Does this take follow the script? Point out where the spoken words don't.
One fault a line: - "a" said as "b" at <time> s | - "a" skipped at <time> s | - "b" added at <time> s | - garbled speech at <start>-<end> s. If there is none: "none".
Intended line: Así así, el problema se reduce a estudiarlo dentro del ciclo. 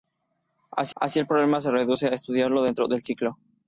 none